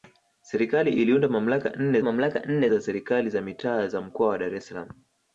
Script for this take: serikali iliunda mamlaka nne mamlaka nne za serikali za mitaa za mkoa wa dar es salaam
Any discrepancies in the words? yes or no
no